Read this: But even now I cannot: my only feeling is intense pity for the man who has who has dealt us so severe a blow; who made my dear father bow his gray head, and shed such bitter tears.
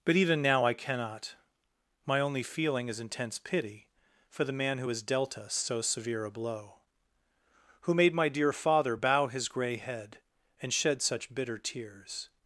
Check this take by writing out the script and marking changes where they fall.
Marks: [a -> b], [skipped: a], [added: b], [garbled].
But even now I cannot: my only feeling is intense pity for the man who has [skipped: who has] dealt us so severe a blow; who made my dear father bow his gray head, and shed such bitter tears.